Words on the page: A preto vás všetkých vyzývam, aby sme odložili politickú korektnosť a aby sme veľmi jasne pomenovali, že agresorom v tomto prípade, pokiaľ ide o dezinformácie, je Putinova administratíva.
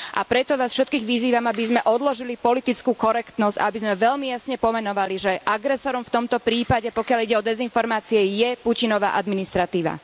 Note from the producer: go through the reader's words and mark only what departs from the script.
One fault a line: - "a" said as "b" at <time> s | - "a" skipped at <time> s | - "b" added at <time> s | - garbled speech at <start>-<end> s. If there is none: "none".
none